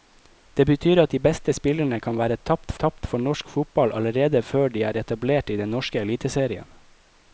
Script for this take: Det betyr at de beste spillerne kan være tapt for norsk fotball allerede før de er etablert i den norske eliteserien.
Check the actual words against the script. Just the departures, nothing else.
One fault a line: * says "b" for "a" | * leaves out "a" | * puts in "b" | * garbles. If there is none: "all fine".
* puts in "tapt"